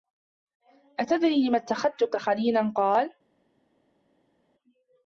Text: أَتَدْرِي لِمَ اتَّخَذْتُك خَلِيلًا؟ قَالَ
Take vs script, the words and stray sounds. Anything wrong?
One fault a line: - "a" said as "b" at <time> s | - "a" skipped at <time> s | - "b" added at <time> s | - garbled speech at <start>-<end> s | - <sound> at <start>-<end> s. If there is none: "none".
none